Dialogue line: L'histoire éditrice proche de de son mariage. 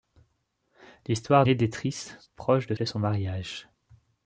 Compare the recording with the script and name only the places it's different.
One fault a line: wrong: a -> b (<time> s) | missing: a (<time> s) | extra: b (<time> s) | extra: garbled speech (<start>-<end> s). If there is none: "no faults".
no faults